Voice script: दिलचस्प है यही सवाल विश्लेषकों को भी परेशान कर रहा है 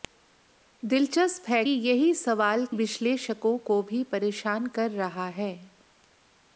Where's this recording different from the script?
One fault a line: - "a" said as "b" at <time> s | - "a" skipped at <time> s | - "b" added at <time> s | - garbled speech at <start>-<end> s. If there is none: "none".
none